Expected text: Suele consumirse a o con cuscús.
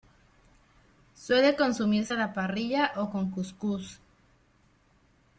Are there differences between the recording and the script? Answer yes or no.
yes